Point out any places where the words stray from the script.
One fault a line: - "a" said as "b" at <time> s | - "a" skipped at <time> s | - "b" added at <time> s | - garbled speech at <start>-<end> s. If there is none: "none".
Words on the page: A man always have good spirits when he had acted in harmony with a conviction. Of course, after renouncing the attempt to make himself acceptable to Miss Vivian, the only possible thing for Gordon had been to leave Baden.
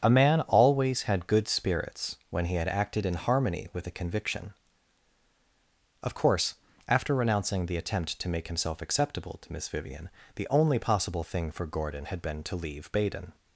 - "have" said as "had" at 1.0 s